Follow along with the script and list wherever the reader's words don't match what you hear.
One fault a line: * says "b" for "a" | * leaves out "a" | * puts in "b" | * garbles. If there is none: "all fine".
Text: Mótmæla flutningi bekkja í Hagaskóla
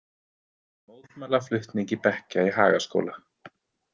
all fine